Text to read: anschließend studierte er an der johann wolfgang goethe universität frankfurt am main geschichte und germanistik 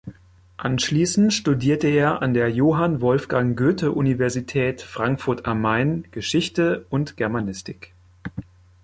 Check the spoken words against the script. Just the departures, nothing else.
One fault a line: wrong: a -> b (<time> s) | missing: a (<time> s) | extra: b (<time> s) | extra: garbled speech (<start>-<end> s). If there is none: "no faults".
no faults